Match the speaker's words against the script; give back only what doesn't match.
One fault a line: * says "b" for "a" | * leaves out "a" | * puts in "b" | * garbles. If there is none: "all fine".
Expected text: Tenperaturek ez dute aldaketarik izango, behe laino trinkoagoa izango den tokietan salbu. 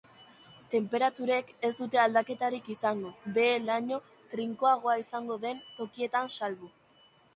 all fine